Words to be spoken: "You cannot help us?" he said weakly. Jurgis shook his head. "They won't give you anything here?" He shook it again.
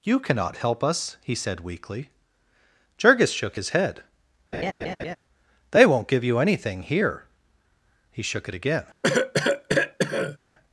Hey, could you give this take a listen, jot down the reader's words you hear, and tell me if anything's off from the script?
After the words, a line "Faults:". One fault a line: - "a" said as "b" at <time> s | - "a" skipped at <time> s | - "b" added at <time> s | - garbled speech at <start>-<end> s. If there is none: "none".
"You cannot help us?" he said weakly. Jurgis shook his head. "They won't give you anything here?" He shook it again.
Faults:
none